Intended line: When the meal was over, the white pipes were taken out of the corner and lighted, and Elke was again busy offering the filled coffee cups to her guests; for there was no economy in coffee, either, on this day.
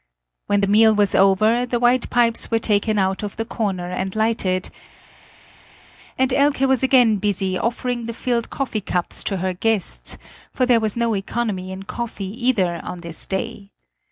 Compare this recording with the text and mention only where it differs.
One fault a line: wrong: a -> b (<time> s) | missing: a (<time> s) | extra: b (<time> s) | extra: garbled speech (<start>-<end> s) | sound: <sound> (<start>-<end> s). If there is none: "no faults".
no faults